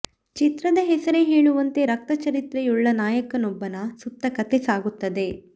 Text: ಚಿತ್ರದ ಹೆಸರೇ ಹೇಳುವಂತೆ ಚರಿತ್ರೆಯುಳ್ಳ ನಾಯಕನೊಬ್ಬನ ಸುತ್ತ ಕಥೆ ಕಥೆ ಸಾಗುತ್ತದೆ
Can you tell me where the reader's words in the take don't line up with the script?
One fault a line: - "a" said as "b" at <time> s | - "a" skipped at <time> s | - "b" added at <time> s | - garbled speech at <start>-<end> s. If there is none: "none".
- "ರಕ್ತ" added at 1.8 s
- "ಕಥೆ" skipped at 4.6 s